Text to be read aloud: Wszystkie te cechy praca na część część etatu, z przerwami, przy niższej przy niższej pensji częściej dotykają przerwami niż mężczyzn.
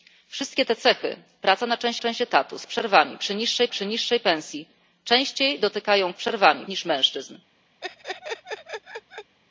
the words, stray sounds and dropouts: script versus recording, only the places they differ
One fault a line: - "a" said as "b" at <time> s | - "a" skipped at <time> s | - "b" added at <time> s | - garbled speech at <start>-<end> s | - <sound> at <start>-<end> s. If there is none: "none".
- laugh at 7.8-9.4 s